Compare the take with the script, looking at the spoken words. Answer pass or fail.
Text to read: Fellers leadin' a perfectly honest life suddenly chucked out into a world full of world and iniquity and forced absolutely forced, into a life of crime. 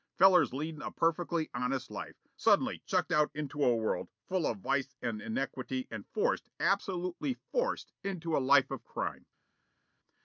fail